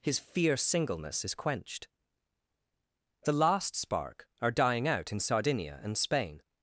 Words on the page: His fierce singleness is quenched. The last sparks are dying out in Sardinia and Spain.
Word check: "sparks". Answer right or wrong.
wrong